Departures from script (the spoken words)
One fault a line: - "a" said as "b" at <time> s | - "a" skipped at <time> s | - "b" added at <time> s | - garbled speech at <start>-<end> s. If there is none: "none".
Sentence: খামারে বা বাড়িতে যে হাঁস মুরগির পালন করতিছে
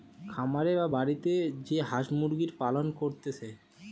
none